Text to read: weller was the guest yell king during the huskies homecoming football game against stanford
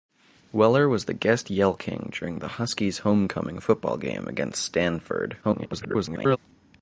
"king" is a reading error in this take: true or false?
false